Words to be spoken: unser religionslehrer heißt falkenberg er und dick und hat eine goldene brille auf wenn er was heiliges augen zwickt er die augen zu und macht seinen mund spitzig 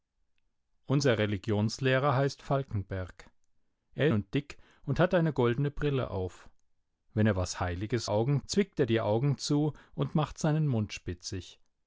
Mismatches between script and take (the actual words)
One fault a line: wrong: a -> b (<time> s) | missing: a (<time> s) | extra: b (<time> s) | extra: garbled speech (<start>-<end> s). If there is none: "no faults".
no faults